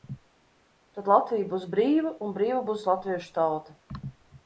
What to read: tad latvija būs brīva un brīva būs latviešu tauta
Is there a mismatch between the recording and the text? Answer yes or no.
no